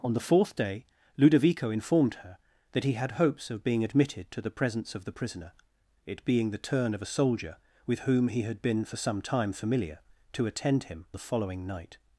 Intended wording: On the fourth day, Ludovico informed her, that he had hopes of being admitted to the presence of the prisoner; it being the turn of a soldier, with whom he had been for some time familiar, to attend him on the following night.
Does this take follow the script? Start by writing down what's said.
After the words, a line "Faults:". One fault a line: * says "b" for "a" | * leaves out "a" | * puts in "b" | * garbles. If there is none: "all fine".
On the fourth day, Ludovico informed her, that he had hopes of being admitted to the presence of the prisoner; it being the turn of a soldier, with whom he had been for some time familiar, to attend him the following night.
Faults:
* leaves out "on"